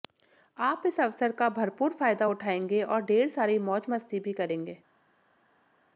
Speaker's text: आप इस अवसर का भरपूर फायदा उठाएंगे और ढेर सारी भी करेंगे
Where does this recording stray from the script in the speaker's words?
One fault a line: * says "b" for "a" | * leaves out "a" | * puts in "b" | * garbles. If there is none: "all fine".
* puts in "मौज मस्ती"